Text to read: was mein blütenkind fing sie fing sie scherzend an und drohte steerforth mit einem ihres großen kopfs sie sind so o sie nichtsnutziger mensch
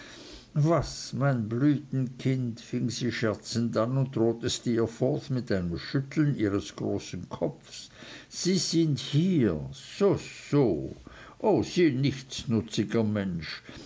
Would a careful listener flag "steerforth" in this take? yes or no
no